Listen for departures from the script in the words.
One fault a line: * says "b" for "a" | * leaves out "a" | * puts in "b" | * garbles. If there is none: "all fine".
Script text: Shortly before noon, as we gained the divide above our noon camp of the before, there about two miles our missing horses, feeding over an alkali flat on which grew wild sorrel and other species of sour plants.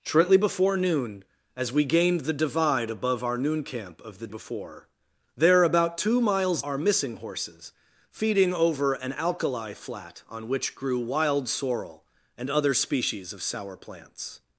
all fine